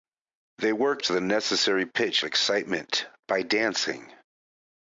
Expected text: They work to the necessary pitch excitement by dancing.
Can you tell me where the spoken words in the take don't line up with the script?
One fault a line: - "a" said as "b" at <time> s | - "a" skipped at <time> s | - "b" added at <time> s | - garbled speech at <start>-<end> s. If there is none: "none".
none